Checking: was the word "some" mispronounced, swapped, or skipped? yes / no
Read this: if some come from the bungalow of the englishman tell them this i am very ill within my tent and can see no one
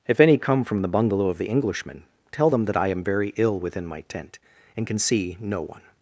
yes